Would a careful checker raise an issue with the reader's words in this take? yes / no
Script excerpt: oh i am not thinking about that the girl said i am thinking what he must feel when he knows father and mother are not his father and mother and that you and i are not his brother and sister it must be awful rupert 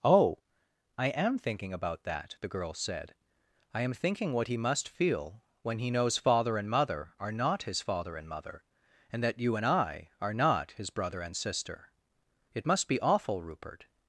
yes